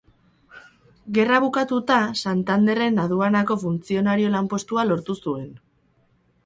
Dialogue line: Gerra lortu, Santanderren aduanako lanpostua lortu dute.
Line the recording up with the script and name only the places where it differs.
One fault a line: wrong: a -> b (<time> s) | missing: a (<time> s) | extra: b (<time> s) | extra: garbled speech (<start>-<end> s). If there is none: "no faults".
wrong: lortu -> bukatuta (1.4 s)
extra: funtzionario (3.7 s)
wrong: dute -> zuen (5.3 s)